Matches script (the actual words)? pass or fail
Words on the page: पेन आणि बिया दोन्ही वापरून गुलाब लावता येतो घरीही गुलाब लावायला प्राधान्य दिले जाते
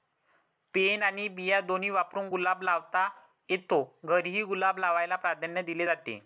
pass